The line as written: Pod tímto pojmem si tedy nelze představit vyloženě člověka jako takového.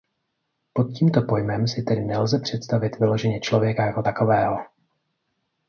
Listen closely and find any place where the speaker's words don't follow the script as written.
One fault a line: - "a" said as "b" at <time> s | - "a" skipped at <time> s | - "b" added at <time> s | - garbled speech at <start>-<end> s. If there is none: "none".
none